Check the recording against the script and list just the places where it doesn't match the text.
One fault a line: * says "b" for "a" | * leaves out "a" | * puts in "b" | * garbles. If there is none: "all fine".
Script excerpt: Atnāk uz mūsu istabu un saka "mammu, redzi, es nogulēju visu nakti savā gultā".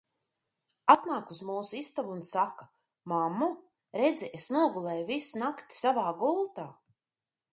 all fine